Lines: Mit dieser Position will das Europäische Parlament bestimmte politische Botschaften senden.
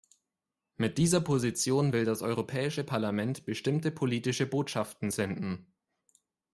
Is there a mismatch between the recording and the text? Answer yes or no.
no